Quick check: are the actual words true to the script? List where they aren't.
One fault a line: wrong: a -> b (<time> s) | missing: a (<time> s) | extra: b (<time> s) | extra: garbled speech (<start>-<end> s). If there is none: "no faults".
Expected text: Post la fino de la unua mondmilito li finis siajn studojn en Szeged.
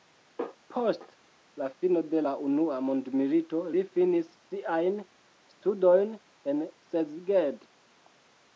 no faults